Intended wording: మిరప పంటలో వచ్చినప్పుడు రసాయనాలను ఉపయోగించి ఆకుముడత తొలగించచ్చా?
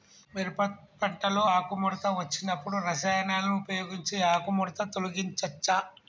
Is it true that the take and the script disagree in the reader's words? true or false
true